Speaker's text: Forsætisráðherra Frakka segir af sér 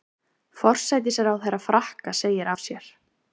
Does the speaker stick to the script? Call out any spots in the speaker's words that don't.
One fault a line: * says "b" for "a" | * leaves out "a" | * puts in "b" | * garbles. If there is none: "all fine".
all fine